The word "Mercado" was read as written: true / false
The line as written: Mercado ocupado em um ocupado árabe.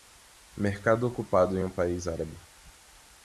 true